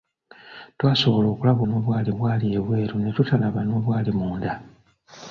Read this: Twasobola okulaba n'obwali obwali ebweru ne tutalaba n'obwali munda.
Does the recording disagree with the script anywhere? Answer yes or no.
no